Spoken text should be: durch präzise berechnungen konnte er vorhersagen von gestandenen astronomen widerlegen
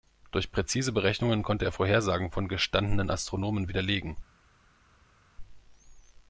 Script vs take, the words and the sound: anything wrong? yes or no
no